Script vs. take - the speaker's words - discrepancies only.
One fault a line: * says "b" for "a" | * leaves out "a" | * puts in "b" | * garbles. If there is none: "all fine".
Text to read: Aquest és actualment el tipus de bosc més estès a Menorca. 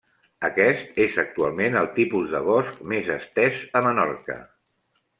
all fine